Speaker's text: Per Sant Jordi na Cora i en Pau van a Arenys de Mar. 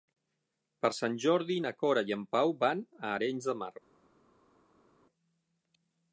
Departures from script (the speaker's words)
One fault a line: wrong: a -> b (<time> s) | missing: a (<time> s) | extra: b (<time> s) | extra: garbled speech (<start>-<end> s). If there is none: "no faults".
no faults